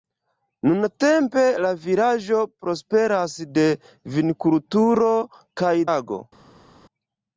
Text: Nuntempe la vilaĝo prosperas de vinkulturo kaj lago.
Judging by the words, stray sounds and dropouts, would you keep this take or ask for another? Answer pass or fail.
pass